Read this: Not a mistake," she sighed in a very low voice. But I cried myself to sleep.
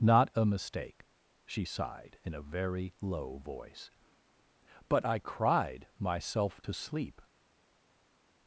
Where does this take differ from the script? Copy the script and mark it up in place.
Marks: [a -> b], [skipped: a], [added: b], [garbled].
Not a mistake," she sighed in a very low voice. But I cried myself to sleep.